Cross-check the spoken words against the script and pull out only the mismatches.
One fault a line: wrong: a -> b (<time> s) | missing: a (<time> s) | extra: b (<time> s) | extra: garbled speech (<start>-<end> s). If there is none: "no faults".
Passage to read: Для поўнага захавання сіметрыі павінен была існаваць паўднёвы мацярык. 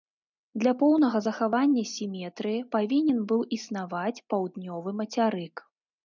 wrong: была -> быў (3.3 s)